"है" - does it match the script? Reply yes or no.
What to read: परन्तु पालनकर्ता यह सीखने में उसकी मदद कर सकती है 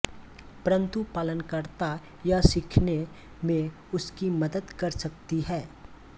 yes